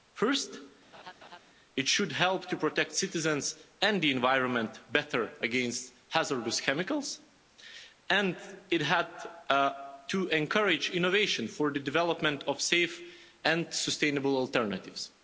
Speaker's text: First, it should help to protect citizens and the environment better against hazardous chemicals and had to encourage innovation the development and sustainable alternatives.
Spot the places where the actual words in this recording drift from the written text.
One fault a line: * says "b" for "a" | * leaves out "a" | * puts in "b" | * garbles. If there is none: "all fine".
* puts in "it"
* puts in "for"
* puts in "of safe"